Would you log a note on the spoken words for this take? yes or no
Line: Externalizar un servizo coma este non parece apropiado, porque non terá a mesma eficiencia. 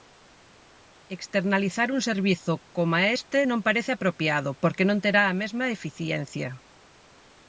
no